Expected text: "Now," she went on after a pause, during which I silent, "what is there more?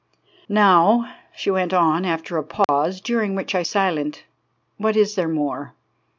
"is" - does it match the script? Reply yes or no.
yes